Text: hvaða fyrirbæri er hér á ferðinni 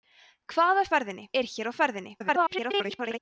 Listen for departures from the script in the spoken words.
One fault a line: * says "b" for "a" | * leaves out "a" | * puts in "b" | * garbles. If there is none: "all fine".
* says "ferðinni" for "fyrirbæri"
* garbles